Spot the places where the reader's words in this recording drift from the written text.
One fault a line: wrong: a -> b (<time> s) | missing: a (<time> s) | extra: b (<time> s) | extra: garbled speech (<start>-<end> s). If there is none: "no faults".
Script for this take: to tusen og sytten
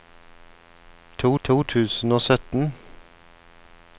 extra: to (1.4 s)